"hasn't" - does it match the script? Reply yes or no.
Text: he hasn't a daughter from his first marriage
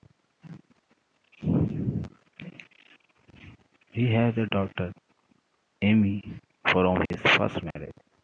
no